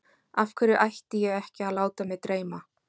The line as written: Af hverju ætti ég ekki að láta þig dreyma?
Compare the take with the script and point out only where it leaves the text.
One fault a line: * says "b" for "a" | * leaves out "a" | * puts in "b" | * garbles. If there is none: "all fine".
* says "mig" for "þig"